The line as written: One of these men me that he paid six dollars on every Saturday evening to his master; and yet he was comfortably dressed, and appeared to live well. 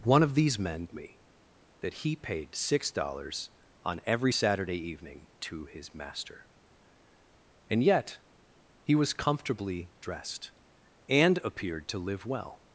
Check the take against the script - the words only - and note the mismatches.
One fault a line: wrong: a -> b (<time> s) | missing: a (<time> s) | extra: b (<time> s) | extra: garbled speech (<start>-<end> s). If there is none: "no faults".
no faults